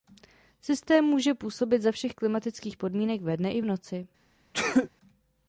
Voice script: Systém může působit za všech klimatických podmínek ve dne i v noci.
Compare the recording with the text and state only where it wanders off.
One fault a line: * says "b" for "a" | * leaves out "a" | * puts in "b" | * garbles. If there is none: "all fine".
all fine